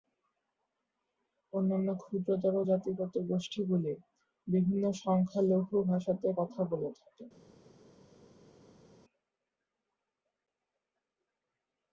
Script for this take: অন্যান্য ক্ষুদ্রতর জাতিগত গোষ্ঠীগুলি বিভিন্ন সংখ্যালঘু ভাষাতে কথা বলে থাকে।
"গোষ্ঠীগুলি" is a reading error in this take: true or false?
false